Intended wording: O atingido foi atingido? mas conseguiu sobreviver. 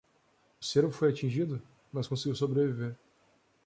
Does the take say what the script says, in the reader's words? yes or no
no